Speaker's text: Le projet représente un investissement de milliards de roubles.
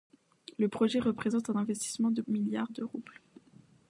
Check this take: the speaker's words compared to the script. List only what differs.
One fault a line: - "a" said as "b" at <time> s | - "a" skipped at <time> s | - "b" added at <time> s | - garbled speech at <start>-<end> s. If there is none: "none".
none